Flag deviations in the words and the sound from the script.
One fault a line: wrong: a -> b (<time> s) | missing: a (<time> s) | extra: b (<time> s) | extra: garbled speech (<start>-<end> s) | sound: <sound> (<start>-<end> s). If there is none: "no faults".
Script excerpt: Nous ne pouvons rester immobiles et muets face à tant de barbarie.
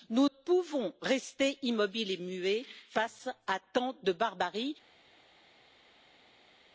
missing: ne (0.3 s)